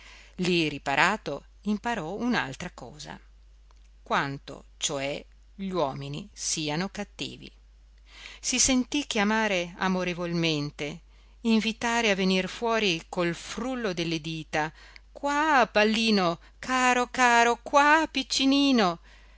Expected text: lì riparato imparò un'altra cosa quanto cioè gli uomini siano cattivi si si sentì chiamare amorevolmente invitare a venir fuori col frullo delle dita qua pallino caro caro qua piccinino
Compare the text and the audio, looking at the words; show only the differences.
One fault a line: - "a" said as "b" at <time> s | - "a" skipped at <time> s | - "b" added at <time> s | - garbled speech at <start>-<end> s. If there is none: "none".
- "si" skipped at 8.6 s